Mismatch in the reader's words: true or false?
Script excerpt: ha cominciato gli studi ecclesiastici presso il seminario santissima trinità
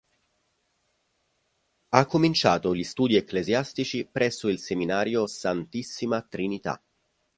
false